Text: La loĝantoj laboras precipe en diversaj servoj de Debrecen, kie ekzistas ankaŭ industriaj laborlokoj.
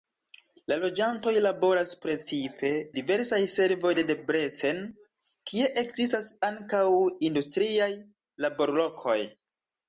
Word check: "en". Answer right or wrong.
wrong